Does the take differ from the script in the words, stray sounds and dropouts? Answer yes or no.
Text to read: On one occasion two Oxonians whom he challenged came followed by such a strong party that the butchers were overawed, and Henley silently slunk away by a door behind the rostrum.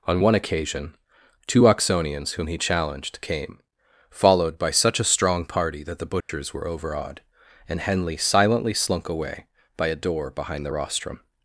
yes